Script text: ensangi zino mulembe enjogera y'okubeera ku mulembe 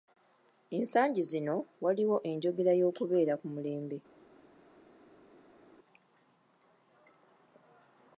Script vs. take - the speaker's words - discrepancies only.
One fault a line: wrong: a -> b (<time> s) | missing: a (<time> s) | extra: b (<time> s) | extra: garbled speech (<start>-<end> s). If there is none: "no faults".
wrong: mulembe -> waliwo (1.8 s)